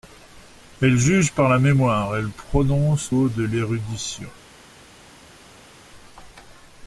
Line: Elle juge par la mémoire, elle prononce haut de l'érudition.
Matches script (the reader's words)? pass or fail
pass